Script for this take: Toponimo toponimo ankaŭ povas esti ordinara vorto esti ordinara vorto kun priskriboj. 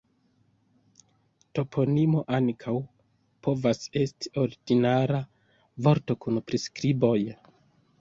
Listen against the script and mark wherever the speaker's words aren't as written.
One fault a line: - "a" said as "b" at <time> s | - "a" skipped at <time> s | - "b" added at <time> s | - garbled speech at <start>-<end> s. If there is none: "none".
- "toponimo" skipped at 2.2 s
- "esti ordinara vorto" skipped at 6.2 s